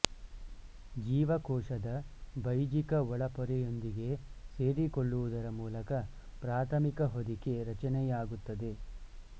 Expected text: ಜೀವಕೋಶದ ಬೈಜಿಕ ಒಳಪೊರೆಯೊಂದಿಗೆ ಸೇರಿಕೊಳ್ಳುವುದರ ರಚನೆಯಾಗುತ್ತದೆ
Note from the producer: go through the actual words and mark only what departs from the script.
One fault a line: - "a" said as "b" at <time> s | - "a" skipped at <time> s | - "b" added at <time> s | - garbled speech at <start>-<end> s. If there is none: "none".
- "ಮೂಲಕ ಪ್ರಾಥಮಿಕ ಹೊದಿಕೆ" added at 5.6 s